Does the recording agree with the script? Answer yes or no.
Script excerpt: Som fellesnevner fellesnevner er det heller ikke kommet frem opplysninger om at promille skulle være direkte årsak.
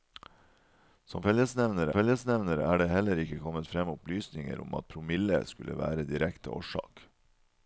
yes